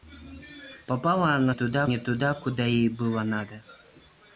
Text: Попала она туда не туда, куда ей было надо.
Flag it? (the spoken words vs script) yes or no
no